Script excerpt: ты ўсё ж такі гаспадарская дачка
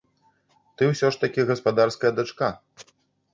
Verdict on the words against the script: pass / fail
pass